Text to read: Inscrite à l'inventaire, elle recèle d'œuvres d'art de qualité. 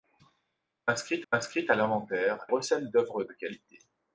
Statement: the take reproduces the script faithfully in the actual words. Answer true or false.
false